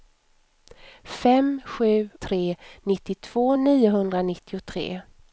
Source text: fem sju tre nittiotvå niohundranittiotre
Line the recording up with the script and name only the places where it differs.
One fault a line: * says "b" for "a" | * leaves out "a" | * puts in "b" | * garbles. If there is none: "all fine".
all fine